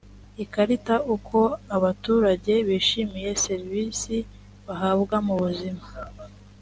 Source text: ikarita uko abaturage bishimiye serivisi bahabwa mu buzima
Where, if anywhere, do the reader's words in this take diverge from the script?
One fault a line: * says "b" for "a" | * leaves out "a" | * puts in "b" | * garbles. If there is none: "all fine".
all fine